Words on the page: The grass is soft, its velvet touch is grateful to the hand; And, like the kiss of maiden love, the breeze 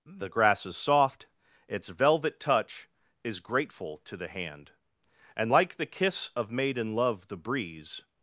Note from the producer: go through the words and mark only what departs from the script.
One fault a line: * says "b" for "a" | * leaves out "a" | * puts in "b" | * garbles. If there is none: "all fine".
all fine